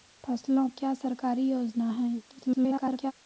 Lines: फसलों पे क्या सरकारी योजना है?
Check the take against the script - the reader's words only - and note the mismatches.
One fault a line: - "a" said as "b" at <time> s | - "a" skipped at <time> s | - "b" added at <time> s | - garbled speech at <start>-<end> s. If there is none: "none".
- "पे" skipped at 0.7 s
- garbled speech at 2.3-3.1 s